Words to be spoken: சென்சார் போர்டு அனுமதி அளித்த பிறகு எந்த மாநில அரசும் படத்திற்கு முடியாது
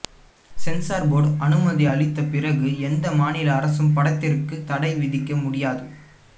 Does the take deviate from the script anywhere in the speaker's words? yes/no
yes